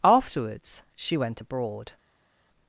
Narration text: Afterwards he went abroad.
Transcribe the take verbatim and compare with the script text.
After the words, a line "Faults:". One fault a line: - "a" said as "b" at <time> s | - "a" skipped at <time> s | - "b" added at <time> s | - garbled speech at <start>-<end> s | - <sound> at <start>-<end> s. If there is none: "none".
Afterwards she went abroad.
Faults:
- "he" said as "she" at 0.9 s